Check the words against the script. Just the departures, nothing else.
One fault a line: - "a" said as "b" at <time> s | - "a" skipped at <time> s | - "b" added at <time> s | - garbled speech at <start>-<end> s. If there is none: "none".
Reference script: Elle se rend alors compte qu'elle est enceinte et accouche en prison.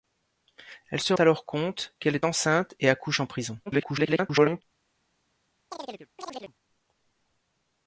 - "rend" skipped at 1.1 s
- garbled speech at 3.7-4.6 s